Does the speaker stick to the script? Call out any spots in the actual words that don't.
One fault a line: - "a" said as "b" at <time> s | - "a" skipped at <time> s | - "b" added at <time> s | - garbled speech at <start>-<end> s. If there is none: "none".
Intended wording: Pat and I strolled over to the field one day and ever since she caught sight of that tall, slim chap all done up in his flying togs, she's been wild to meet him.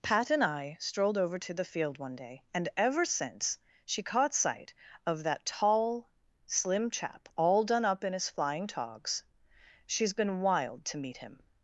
none